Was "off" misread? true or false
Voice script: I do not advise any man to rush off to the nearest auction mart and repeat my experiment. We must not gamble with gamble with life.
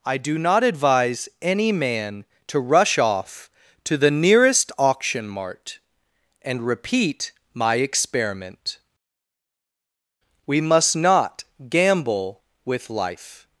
false